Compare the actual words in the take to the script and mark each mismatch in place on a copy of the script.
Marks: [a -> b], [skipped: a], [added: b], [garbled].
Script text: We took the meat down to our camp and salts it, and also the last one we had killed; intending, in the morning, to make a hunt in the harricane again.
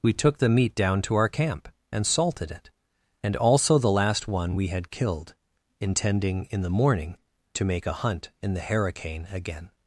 We took the meat down to our camp and [salts -> salted] it, and also the last one we had killed; intending, in the morning, to make a hunt in the harricane again.